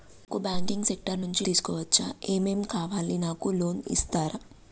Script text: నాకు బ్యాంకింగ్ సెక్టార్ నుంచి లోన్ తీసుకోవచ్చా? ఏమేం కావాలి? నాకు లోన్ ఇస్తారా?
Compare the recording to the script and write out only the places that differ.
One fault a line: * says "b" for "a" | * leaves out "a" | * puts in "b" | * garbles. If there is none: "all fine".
* leaves out "లోన్"